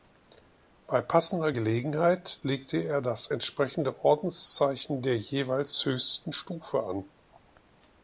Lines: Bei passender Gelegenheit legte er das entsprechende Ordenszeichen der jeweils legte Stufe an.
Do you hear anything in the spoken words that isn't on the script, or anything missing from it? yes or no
yes